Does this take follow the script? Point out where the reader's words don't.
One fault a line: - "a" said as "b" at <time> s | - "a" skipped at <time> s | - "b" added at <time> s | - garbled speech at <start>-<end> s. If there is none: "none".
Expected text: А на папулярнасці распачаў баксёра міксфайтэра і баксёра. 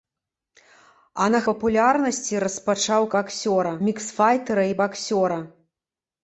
none